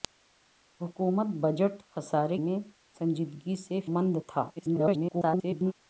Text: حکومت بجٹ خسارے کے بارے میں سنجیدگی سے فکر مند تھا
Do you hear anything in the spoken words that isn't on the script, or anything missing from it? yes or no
yes